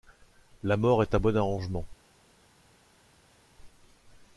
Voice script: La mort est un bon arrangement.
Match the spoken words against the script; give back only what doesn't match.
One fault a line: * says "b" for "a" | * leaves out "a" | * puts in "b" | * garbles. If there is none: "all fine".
all fine